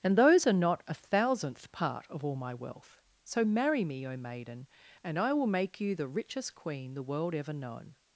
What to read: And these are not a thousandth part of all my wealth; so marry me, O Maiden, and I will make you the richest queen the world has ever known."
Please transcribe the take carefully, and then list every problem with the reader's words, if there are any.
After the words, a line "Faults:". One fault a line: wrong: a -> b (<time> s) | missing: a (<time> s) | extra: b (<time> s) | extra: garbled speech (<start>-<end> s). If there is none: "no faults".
And those are not a thousandth part of all my wealth; so marry me, O Maiden, and I will make you the richest queen the world ever known."
Faults:
wrong: these -> those (0.2 s)
missing: has (7.3 s)